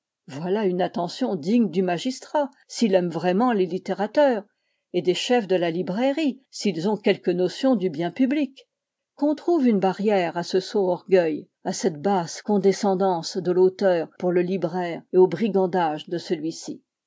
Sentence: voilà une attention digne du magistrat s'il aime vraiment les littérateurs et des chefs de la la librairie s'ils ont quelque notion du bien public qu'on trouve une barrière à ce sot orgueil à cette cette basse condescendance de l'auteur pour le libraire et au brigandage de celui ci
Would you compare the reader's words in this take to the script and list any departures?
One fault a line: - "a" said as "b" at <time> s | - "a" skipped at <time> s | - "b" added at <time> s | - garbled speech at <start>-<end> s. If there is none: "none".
- "la" skipped at 5.7 s
- "cette" skipped at 12.0 s